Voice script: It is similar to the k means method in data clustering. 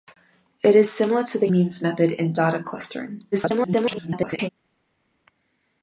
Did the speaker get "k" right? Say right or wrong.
wrong